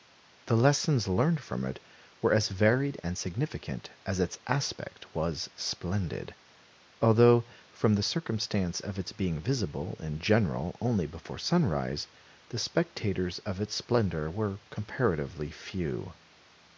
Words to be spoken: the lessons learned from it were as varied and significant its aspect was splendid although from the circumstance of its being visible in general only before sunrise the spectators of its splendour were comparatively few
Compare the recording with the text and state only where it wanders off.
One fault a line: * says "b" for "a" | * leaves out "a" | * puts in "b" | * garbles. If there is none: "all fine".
* puts in "as"